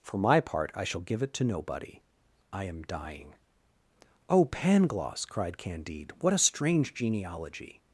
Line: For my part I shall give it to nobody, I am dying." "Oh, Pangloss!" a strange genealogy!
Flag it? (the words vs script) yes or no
yes